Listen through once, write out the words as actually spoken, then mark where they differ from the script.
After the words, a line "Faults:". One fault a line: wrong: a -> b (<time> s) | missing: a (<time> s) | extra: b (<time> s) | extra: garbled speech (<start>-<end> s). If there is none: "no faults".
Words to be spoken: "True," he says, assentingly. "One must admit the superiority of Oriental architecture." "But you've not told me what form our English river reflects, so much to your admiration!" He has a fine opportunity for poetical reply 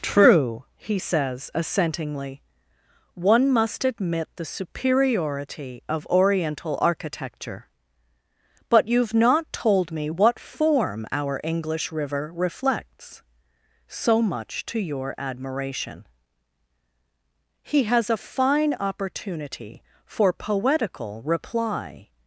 "True," he says, assentingly. "One must admit the superiority of Oriental architecture." "But you've not told me what form our English river reflects, so much to your admiration!" He has a fine opportunity for poetical reply
Faults:
no faults